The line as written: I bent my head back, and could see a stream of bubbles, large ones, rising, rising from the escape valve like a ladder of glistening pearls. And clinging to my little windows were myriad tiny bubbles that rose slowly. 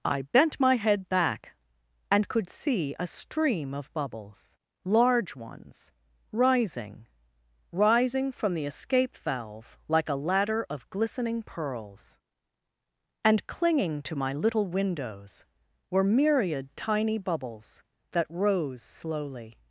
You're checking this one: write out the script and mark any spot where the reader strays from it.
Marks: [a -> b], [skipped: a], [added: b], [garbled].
I bent my head back, and could see a stream of bubbles, large ones, rising, rising from the escape valve like a ladder of glistening pearls. And clinging to my little windows were myriad tiny bubbles that rose slowly.